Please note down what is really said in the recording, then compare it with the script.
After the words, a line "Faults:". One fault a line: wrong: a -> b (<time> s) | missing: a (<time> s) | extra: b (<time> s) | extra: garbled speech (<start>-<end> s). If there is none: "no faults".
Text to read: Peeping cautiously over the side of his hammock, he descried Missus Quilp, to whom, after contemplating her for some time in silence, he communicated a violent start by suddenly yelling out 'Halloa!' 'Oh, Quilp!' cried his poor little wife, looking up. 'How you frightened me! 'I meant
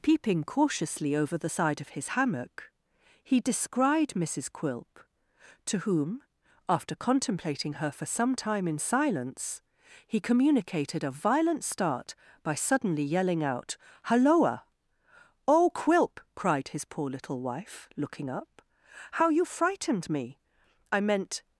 Peeping cautiously over the side of his hammock, he descried Missus Quilp, to whom, after contemplating her for some time in silence, he communicated a violent start by suddenly yelling out 'Halloa!' 'Oh, Quilp!' cried his poor little wife, looking up. 'How you frightened me! 'I meant
Faults:
no faults